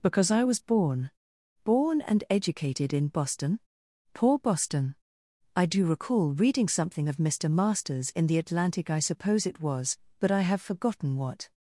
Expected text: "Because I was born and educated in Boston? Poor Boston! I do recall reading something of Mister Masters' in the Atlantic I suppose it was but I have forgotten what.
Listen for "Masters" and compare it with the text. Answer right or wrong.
right